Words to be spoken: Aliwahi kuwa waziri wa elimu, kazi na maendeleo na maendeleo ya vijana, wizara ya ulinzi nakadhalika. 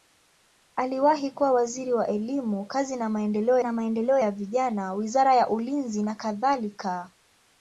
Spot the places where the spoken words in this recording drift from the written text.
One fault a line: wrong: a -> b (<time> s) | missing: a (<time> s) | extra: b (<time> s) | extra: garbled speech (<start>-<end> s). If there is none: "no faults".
no faults